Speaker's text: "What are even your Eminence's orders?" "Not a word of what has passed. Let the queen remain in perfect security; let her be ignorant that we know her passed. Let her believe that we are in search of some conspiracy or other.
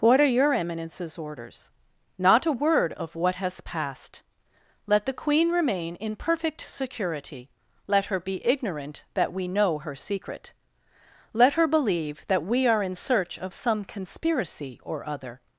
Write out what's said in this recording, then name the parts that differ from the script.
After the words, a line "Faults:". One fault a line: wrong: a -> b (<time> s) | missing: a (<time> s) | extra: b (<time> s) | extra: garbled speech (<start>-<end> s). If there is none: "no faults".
"What are your Eminence's orders?" "Not a word of what has passed. Let the queen remain in perfect security; let her be ignorant that we know her secret. Let her believe that we are in search of some conspiracy or other.
Faults:
missing: even (0.2 s)
wrong: passed -> secret (10.0 s)